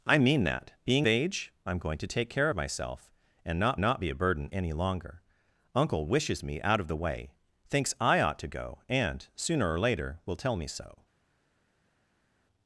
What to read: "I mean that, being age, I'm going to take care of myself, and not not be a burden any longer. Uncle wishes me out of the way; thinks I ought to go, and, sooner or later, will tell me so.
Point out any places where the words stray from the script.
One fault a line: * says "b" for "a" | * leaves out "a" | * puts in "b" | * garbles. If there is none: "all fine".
all fine